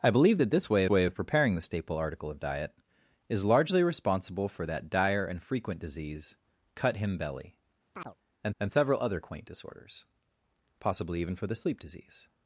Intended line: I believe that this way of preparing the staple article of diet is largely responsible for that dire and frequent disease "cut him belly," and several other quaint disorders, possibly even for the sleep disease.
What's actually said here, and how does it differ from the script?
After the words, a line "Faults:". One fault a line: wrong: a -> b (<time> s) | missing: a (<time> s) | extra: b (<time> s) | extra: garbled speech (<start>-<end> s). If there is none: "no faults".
I believe that this way way of preparing the staple article of diet is largely responsible for that dire and frequent disease "cut him belly," and and several other quaint disorders, possibly even for the sleep disease.
Faults:
extra: way (0.9 s)
extra: and (8.6 s)